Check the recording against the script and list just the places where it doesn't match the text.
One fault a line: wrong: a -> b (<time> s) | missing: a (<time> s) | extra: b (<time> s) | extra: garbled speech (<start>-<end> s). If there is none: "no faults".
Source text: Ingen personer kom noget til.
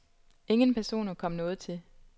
no faults